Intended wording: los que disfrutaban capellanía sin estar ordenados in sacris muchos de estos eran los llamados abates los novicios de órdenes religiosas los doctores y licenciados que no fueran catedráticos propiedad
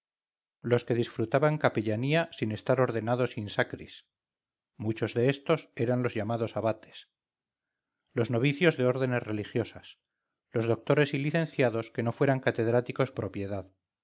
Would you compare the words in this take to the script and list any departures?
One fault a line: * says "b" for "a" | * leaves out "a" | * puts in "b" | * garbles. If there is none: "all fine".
all fine